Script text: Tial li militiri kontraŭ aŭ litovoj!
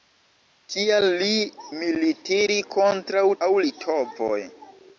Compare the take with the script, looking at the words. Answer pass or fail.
pass